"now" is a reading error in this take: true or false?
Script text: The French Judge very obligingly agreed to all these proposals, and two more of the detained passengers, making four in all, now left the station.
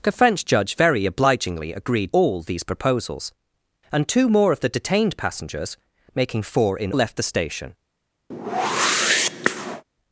true